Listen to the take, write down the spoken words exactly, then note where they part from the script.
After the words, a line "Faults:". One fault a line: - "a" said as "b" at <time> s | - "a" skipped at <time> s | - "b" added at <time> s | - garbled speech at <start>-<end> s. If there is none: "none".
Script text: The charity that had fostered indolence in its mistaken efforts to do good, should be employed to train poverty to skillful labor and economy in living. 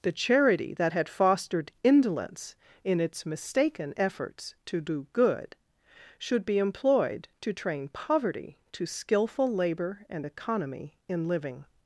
The charity that had fostered indolence in its mistaken efforts to do good, should be employed to train poverty to skillful labor and economy in living.
Faults:
none